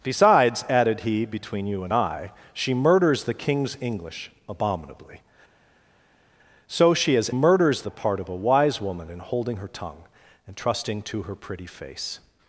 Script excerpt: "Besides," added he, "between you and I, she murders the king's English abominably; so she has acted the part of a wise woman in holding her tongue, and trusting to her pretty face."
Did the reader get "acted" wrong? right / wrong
wrong